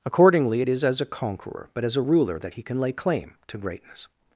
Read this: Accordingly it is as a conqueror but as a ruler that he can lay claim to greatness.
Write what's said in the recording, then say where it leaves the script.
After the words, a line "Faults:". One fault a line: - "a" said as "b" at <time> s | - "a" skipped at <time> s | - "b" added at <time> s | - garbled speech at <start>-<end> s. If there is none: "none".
Accordingly it is as a conqueror but as a ruler that he can lay claim to greatness.
Faults:
none